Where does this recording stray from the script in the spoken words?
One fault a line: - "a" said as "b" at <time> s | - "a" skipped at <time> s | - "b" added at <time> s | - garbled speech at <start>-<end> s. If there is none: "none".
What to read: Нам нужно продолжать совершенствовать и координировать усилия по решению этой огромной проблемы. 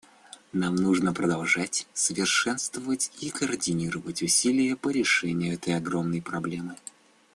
none